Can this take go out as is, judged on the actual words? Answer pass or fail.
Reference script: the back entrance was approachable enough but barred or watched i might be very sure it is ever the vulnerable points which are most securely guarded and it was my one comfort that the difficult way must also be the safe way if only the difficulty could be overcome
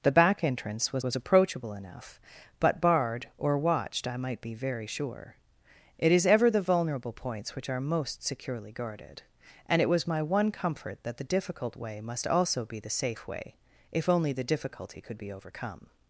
fail